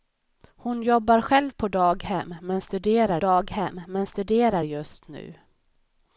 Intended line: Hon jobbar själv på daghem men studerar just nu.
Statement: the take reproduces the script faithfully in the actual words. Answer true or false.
false